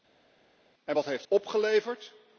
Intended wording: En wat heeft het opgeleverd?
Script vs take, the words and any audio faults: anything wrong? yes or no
yes